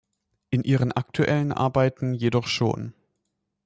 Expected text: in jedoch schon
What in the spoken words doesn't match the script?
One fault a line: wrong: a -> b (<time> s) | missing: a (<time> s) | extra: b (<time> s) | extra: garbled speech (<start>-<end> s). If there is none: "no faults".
extra: ihren aktuellen arbeiten (0.6 s)